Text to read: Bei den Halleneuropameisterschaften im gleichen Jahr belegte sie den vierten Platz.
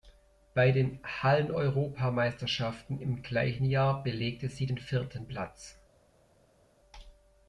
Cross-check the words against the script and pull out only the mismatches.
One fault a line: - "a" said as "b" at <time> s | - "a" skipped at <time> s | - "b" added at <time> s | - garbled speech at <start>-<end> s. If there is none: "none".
none